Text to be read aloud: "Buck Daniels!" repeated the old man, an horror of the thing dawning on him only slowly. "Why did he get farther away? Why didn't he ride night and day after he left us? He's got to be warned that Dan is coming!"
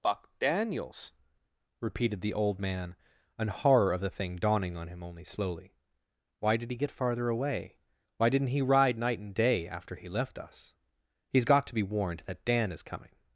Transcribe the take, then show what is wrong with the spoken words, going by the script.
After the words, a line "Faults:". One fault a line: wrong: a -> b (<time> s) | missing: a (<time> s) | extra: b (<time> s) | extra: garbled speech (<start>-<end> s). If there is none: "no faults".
"Buck Daniels!" repeated the old man, an horror of the thing dawning on him only slowly. "Why did he get farther away? Why didn't he ride night and day after he left us? He's got to be warned that Dan is coming!"
Faults:
no faults